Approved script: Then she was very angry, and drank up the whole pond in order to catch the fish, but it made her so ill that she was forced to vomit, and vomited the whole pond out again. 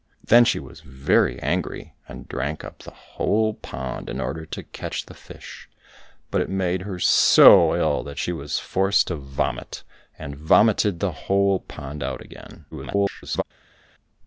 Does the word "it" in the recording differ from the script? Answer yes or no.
no